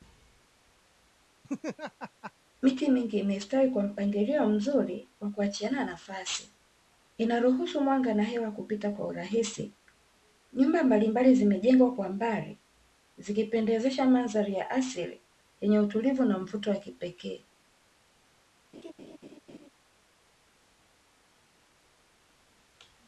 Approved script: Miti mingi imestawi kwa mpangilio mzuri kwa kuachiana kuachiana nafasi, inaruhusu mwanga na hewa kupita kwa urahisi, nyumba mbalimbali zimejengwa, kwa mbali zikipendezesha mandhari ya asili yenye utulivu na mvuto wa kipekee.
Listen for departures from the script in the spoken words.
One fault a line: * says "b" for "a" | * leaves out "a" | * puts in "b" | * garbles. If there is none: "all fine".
* leaves out "kuachiana"